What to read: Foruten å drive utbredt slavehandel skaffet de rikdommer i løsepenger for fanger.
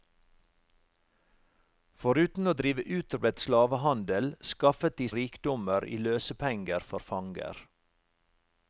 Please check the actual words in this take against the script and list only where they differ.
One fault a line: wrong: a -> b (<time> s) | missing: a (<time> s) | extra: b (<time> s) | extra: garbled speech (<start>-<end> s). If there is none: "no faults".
no faults